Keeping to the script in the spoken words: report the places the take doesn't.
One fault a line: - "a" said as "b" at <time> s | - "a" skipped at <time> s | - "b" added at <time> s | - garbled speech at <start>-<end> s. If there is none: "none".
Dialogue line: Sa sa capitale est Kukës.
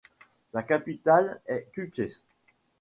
- "sa" skipped at 0.6 s